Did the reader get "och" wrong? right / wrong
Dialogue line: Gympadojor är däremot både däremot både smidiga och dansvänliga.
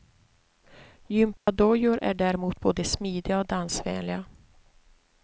right